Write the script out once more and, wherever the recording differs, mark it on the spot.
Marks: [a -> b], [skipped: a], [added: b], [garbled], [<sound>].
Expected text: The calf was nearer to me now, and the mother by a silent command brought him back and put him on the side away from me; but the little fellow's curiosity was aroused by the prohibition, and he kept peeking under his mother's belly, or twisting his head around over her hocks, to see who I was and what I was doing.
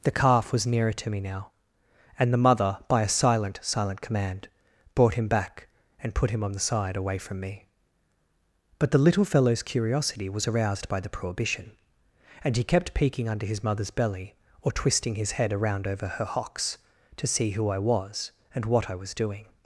The calf was nearer to me now, and the mother by a silent [added: silent] command brought him back and put him on the side away from me; but the little fellow's curiosity was aroused by the prohibition, and he kept peeking under his mother's belly, or twisting his head around over her hocks, to see who I was and what I was doing.